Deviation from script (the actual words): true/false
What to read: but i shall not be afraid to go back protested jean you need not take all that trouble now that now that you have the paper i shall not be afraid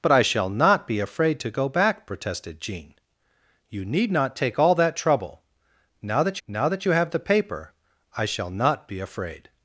false